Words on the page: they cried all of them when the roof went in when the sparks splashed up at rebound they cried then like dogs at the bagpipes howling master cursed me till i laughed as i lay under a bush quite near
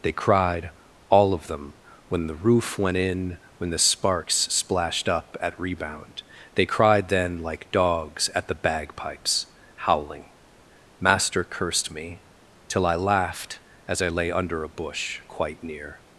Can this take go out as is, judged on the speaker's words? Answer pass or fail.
pass